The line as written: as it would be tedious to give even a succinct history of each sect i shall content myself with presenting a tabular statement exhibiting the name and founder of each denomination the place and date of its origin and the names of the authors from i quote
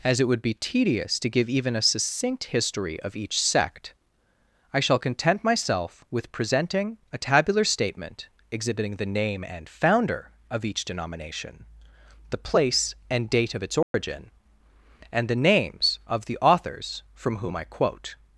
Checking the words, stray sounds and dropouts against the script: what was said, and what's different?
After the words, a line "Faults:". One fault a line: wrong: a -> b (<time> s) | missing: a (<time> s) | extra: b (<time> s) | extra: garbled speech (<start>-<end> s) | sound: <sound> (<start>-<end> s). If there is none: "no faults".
as it would be tedious to give even a succinct history of each sect i shall content myself with presenting a tabular statement exhibiting the name and founder of each denomination the place and date of its origin and the names of the authors from whom i quote
Faults:
sound: dropout (13.8-13.9 s)
extra: whom (17.4 s)